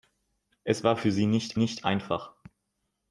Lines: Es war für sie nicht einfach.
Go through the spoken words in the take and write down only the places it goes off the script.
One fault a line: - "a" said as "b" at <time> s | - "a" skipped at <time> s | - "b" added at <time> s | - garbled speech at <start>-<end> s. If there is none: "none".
- "nicht" added at 1.5 s